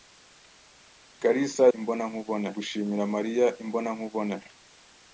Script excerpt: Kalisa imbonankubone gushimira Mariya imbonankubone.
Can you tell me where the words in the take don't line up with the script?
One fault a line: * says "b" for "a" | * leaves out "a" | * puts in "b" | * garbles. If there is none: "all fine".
all fine